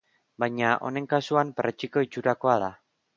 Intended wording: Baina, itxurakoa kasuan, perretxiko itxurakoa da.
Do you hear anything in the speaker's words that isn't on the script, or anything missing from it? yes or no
yes